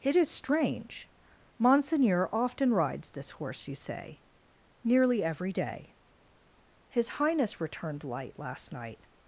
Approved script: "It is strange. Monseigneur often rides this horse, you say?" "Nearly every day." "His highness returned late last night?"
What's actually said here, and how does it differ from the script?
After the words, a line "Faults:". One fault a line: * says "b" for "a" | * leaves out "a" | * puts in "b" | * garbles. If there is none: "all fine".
"It is strange. Monseigneur often rides this horse, you say?" "Nearly every day." "His highness returned light last night?"
Faults:
* says "light" for "late"